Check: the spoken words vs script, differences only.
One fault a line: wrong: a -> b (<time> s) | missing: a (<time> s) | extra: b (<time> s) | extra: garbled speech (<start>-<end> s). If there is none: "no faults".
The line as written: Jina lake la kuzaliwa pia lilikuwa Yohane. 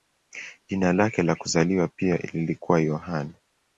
no faults